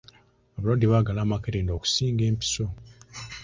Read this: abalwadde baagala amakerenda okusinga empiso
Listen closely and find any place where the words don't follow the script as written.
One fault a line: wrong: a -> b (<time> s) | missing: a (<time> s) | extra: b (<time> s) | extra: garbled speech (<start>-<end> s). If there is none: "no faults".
no faults